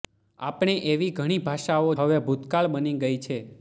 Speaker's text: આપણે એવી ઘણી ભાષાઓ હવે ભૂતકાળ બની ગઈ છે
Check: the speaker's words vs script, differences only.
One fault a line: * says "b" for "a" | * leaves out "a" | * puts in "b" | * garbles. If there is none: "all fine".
all fine